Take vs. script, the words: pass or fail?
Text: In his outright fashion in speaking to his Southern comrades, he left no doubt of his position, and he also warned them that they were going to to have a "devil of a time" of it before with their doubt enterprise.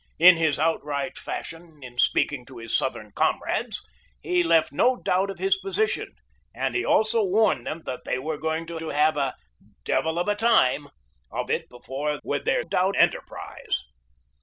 pass